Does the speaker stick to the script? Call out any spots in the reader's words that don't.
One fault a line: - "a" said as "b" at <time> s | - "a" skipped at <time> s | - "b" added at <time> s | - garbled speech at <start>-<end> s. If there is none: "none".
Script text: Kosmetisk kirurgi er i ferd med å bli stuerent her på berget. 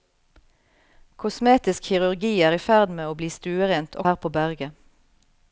none